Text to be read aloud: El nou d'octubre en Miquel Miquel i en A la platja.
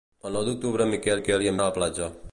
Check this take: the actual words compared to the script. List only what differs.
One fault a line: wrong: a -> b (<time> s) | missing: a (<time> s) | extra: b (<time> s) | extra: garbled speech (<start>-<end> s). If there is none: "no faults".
no faults